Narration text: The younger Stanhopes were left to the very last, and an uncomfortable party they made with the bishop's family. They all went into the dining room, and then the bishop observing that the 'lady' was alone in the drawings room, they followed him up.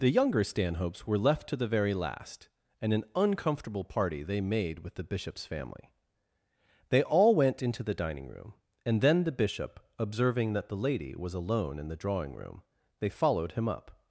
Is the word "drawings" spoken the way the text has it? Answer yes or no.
no